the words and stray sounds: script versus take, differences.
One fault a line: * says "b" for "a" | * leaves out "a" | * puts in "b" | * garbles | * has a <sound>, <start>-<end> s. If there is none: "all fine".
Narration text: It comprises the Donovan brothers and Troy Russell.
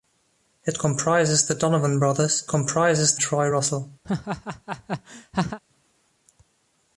* says "comprises" for "and"
* has a laugh, 4.0-5.6 s